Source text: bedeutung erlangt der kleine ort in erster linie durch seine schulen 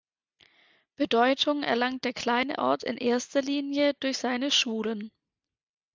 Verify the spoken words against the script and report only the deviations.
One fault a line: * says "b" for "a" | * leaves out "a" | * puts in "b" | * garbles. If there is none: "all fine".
all fine